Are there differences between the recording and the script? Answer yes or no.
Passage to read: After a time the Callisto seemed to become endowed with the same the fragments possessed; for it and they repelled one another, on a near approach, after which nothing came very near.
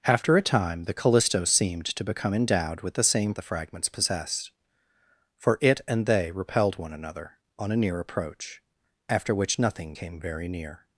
no